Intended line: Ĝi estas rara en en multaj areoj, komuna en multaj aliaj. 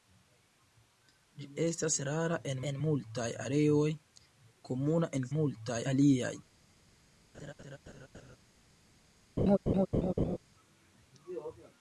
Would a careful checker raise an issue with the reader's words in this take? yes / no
no